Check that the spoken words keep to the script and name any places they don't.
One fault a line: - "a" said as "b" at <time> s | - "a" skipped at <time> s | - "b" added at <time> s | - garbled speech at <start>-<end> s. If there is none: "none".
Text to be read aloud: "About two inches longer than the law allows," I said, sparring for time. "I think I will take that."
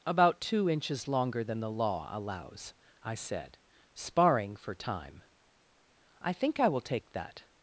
none